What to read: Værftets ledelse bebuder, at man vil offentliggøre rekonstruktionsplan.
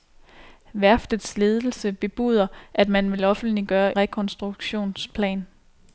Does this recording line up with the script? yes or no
yes